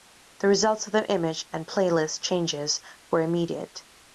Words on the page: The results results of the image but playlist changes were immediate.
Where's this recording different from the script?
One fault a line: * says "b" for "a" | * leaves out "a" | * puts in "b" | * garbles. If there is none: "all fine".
* leaves out "results"
* says "and" for "but"